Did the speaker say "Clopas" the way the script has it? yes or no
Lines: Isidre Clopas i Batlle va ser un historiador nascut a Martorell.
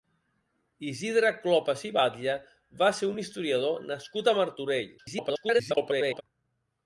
yes